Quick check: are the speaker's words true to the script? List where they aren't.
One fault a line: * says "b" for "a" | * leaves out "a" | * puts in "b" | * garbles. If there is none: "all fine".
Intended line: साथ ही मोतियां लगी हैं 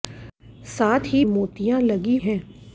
all fine